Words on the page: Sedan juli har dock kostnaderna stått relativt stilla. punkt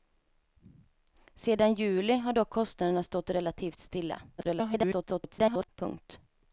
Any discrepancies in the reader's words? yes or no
yes